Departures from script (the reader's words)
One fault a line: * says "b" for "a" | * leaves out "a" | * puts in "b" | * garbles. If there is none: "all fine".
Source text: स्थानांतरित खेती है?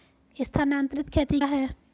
all fine